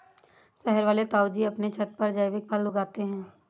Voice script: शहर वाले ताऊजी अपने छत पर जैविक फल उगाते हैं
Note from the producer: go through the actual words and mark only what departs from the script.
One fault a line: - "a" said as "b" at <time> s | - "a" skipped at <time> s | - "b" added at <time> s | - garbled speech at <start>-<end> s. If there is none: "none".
none